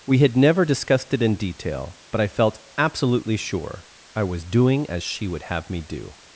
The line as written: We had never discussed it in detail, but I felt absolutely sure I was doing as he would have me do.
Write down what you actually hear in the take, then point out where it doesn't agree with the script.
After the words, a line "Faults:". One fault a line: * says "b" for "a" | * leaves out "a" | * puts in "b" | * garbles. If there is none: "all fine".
We had never discussed it in detail, but I felt absolutely sure I was doing as she would have me do.
Faults:
* says "she" for "he"